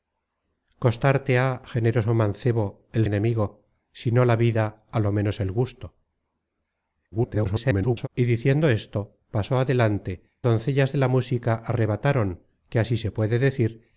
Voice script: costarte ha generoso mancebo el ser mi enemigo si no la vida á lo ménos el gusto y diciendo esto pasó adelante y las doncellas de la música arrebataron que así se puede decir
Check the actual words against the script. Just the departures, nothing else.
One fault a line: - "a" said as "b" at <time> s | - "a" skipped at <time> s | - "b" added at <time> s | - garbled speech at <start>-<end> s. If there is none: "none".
- "ser mi" skipped at 3.1 s
- garbled speech at 7.1-8.1 s
- "y las" skipped at 10.2 s